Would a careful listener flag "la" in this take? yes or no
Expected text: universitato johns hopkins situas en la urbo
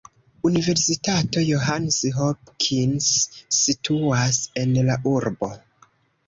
no